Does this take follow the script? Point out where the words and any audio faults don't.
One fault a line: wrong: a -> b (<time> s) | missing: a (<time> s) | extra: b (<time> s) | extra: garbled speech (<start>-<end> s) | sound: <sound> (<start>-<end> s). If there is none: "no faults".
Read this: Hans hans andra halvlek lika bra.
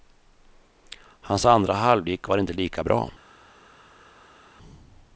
missing: hans (1.4 s)
extra: var inte (2.3 s)